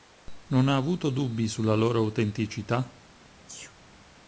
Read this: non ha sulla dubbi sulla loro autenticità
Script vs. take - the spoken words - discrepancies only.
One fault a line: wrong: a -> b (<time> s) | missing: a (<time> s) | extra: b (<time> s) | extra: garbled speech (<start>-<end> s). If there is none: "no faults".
wrong: sulla -> avuto (0.8 s)